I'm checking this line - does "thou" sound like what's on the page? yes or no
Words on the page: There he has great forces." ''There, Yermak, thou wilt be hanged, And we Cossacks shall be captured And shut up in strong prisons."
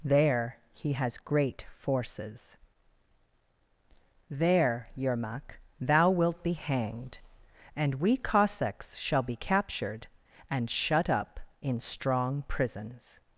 yes